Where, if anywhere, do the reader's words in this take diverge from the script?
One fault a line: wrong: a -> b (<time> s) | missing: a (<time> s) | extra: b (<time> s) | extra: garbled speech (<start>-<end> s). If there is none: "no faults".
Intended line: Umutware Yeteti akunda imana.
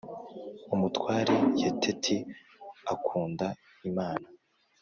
no faults